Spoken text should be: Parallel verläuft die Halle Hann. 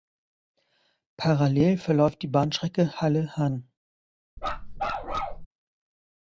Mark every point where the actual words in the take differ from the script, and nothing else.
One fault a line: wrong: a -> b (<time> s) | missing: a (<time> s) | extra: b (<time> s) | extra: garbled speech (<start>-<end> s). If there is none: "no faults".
extra: Bahnstrecke (2.3 s)